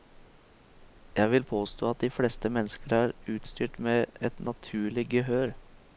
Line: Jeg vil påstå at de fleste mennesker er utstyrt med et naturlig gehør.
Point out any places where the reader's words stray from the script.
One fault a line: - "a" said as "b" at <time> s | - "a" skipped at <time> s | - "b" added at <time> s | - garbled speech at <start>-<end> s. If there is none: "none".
none